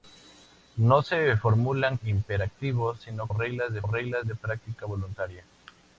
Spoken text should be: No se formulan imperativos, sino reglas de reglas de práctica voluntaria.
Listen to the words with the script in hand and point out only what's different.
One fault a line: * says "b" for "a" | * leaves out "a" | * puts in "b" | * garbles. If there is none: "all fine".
all fine